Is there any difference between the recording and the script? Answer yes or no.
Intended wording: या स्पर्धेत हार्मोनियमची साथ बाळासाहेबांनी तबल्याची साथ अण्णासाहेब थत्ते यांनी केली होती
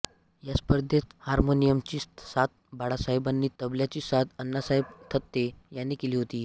no